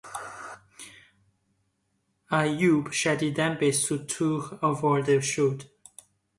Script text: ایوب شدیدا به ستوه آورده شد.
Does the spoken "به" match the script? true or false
true